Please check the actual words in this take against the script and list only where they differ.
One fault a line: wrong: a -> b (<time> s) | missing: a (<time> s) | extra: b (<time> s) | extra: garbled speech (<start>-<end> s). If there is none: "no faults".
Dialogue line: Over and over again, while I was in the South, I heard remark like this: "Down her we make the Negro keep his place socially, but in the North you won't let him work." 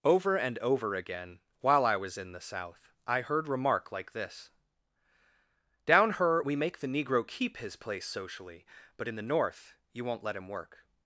no faults